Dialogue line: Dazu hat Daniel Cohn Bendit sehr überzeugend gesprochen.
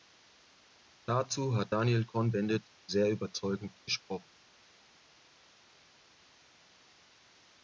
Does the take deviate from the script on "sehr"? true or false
false